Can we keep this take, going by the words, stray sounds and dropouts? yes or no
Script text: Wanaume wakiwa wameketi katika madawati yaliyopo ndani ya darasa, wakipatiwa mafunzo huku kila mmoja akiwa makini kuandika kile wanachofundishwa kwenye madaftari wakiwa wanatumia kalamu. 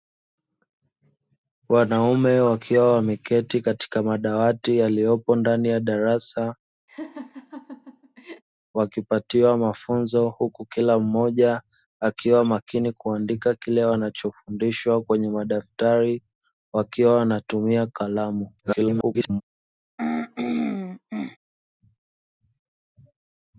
no